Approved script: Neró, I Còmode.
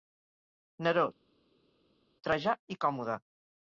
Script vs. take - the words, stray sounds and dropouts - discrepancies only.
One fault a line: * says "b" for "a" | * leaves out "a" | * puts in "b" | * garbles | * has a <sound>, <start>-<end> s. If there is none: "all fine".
* puts in "Trajà"